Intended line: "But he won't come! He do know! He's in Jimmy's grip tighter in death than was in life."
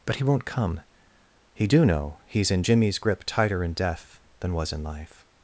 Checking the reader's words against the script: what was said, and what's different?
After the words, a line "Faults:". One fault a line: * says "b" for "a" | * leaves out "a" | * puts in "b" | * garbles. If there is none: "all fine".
"But he won't come! He do know! He's in Jimmy's grip tighter in death than was in life."
Faults:
all fine